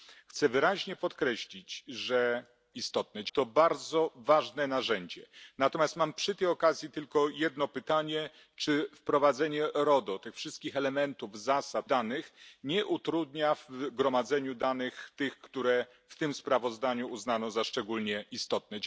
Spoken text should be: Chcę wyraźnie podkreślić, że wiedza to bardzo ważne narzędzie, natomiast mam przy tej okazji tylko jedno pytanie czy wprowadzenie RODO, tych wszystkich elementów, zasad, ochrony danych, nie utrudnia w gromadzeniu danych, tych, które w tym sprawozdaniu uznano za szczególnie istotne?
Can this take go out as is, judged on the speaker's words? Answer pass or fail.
fail